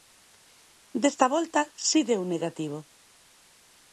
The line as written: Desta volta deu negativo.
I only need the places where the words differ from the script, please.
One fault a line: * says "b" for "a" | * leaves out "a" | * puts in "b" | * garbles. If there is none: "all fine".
* puts in "si"